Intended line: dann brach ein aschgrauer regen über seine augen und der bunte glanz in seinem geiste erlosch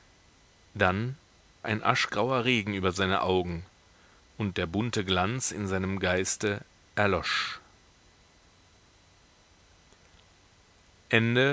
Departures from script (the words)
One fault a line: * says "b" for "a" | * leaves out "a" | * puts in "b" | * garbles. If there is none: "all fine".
* leaves out "brach"